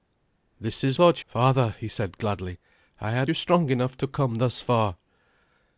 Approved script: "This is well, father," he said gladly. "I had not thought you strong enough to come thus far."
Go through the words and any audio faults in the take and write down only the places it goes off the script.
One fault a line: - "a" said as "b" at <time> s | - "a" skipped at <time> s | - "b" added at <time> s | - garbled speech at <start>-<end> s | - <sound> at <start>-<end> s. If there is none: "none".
- "well" said as "thought" at 0.9 s
- "not thought" skipped at 3.3 s